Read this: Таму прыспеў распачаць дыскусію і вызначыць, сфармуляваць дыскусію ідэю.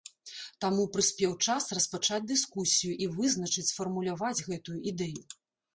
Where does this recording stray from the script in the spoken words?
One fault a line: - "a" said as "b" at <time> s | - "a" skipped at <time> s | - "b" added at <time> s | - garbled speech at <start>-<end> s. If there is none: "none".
- "час" added at 1.5 s
- "дыскусію" said as "гэтую" at 4.5 s